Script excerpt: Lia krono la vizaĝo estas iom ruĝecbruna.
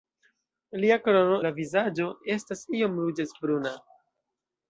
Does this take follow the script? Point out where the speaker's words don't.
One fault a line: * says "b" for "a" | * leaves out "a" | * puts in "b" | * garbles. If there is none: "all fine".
all fine